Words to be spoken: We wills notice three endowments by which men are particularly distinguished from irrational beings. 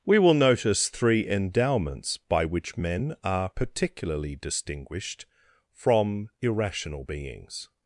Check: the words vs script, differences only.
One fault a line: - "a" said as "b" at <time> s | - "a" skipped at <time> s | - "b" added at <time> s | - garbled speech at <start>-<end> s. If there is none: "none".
- "wills" said as "will" at 0.2 s